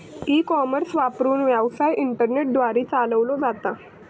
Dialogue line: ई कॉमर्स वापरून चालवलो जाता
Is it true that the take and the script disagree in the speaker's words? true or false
true